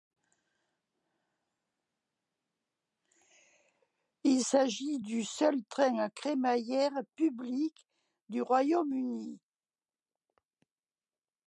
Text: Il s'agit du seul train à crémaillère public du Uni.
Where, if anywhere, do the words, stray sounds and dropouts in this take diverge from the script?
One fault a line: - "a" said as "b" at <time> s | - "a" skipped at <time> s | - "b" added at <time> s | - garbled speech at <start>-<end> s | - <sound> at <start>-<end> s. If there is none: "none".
- "Royaume" added at 8.4 s